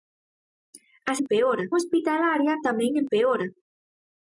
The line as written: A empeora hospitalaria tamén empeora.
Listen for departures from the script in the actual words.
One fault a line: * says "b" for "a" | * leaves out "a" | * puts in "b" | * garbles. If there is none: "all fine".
all fine